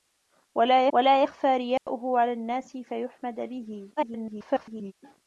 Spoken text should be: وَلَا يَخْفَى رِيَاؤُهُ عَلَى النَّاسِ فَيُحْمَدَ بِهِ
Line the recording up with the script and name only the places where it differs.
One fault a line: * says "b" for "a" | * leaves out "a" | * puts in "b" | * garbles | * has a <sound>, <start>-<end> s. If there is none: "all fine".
* puts in "وَلَا"
* has a dropout, 1.8-1.9 s
* garbles